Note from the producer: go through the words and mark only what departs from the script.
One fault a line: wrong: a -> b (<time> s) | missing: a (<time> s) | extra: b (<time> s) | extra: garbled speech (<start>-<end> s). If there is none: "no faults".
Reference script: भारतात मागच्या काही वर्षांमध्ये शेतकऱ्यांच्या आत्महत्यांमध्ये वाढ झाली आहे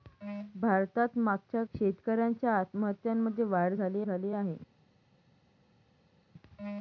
missing: काही वर्षांमध्ये (1.6 s)
extra: झाली (4.0 s)